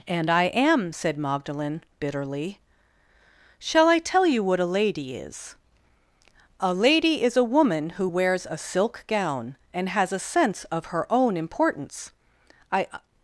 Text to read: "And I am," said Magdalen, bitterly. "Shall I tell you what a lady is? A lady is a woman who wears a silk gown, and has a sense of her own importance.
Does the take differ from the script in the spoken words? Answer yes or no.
yes